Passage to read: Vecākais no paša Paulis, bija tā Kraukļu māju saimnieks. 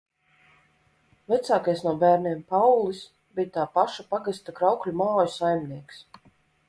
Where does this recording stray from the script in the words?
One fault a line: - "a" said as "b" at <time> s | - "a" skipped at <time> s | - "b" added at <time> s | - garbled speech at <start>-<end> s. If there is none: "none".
- "paša" said as "bērniem" at 2.0 s
- "paša pagasta" added at 3.8 s